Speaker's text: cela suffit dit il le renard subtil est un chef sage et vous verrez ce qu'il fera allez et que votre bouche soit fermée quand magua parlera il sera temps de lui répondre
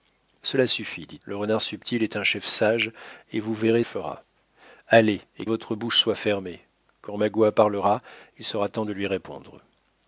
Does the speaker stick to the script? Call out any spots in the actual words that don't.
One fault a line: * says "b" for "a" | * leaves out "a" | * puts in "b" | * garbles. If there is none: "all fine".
* leaves out "il"
* leaves out "ce qu'il"
* leaves out "que"